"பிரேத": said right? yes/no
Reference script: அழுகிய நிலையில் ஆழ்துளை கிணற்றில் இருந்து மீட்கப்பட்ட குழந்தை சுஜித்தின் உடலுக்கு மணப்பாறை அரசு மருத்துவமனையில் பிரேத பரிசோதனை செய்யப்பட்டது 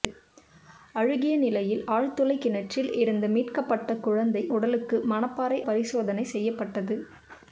no